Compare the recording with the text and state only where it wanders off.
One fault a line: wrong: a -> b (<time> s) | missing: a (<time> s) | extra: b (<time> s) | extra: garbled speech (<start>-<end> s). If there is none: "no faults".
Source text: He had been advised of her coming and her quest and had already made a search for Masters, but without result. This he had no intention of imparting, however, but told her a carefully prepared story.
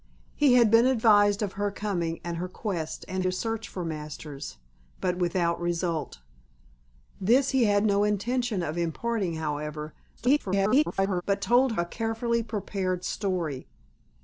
missing: had already made (3.2 s)
extra: garbled speech (10.2-11.2 s)
missing: her (11.8 s)